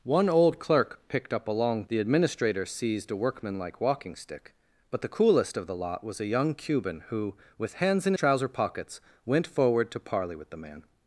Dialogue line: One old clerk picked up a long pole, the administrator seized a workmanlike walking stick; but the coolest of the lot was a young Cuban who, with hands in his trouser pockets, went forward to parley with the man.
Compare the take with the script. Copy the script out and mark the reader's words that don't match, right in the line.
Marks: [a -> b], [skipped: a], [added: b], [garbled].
One old clerk picked up a long [skipped: pole,] the administrator seized a workmanlike walking stick; but the coolest of the lot was a young Cuban who, with hands in [skipped: his] trouser pockets, went forward to parley with the man.